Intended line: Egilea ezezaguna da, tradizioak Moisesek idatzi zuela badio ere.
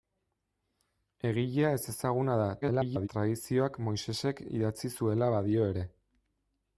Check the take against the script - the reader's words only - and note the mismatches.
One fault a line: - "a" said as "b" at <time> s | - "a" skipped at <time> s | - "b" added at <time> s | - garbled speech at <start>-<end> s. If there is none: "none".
- garbled speech at 2.6-3.1 s